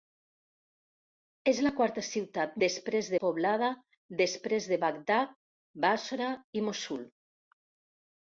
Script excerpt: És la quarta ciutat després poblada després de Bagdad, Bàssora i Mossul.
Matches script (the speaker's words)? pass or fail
pass